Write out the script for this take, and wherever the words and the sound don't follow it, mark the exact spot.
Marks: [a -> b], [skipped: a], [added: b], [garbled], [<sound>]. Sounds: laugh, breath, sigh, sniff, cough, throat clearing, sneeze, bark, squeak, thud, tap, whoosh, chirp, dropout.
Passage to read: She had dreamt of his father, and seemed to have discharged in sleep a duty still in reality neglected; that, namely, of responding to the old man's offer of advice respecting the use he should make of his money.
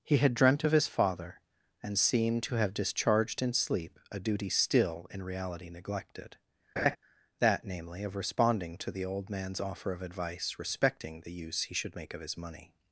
[She -> He] had dreamt of his father, and seemed to have discharged in sleep a duty still in reality neglected; [laugh] that, namely, of responding to the old man's offer of advice respecting the use he should make of his money.